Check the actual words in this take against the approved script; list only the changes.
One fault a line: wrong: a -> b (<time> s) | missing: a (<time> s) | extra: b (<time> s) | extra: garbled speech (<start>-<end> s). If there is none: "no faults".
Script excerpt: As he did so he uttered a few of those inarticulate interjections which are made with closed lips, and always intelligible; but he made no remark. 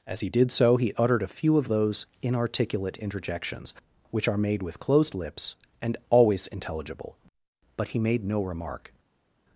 no faults